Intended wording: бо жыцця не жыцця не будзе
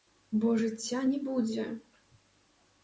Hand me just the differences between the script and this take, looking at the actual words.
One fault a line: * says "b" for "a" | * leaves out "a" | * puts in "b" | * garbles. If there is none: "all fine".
* leaves out "жыцця не"